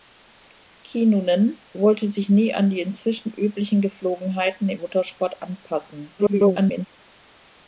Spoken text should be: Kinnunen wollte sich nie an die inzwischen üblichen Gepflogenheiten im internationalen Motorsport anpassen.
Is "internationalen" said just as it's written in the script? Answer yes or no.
no